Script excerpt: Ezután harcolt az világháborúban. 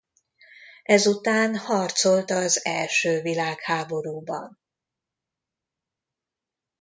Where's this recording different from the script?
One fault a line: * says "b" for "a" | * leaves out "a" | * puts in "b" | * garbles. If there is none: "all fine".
* puts in "első"